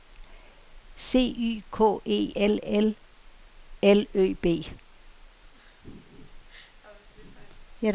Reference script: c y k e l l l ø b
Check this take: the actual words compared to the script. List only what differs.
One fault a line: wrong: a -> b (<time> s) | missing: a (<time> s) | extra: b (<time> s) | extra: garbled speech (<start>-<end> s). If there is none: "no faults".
no faults